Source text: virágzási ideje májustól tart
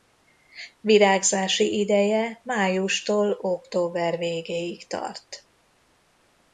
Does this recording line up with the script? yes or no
no